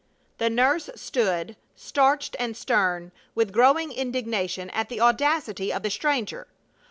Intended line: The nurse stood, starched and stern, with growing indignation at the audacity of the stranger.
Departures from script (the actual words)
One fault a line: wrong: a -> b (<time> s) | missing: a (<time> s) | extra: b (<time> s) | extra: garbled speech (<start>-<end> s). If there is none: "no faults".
no faults